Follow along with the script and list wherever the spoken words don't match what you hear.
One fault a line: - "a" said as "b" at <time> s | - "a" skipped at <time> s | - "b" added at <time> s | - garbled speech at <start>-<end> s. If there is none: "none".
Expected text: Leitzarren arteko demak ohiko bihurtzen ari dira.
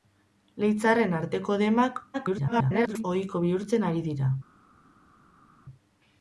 - garbled speech at 2.1-3.0 s